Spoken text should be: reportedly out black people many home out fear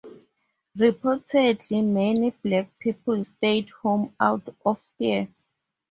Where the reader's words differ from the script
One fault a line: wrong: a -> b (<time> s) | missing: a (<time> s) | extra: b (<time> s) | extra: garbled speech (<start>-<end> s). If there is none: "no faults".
wrong: out -> many (1.9 s)
wrong: many -> stayed (3.2 s)
extra: of (4.6 s)